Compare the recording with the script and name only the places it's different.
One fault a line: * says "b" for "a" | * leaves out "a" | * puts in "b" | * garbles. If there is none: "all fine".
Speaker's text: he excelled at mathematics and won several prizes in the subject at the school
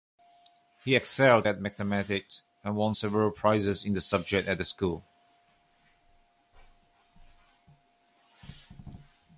all fine